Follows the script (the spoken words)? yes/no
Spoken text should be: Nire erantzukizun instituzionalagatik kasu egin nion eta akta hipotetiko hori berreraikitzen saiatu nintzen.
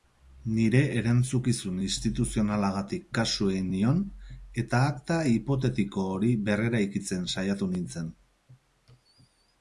yes